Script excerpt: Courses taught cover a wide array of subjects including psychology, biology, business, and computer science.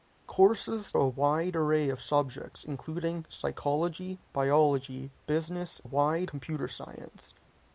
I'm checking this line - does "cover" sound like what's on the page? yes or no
no